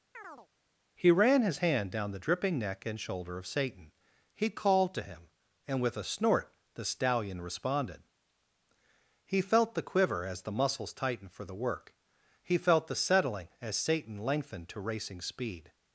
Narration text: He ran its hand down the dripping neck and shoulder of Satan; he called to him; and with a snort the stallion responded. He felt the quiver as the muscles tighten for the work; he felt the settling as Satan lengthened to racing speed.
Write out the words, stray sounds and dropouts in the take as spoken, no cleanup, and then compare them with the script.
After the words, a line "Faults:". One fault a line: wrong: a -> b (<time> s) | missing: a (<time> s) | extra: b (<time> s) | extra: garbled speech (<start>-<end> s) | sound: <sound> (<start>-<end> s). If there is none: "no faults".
He ran his hand down the dripping neck and shoulder of Satan; he called to him; and with a snort the stallion responded. He felt the quiver as the muscles tightened for the work; he felt the settling as Satan lengthened to racing speed.
Faults:
sound: chirp (0.1-0.5 s)
wrong: its -> his (1.4 s)
wrong: tighten -> tightened (10.9 s)